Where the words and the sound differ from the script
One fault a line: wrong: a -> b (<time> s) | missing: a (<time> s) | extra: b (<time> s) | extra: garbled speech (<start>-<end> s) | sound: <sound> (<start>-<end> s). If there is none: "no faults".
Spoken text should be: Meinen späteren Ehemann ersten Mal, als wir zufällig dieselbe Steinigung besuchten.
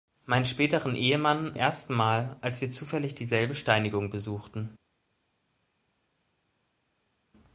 no faults